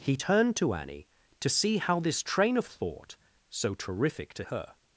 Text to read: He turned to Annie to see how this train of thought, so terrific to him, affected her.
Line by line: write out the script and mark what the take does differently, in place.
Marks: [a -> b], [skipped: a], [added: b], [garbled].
He turned to Annie to see how this train of thought, so terrific to [skipped: him, affected] her.